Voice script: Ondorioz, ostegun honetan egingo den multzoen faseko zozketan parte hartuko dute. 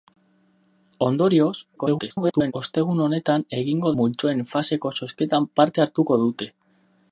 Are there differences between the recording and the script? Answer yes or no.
yes